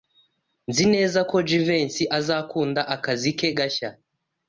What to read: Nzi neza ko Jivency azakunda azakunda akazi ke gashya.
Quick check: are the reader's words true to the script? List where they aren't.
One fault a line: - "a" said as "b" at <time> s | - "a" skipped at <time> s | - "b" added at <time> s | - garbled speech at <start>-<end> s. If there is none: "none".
- "azakunda" skipped at 2.8 s